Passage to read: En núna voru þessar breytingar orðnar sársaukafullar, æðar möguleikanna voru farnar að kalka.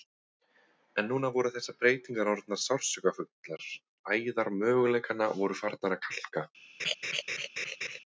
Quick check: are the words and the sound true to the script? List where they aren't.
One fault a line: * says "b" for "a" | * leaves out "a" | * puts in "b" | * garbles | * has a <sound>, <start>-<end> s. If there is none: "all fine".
* has a laugh, 6.8-8.0 s